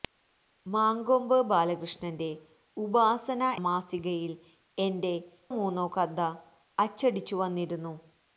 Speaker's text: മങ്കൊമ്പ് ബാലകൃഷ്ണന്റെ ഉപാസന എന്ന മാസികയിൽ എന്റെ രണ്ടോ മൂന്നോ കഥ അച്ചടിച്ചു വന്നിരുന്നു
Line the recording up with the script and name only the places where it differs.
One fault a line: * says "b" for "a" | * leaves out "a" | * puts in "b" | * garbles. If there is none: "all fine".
* leaves out "എന്ന"
* leaves out "രണ്ടോ"